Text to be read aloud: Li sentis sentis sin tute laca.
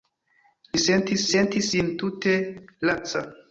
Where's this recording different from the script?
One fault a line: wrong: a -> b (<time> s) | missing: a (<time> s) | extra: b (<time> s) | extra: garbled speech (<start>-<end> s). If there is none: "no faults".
no faults